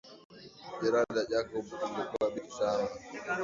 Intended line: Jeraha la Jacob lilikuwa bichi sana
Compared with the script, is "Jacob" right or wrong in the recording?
right